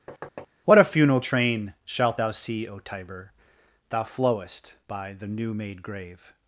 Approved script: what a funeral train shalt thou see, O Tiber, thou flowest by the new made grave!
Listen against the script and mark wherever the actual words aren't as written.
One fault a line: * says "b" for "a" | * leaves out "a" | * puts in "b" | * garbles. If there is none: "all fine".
all fine